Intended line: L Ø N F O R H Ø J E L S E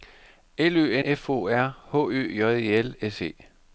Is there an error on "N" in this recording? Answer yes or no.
yes